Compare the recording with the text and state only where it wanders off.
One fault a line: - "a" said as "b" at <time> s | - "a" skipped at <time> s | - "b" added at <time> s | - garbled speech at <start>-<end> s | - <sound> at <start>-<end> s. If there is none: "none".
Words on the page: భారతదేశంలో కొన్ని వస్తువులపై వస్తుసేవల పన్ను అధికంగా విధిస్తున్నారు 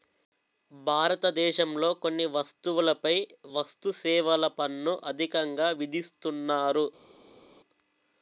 none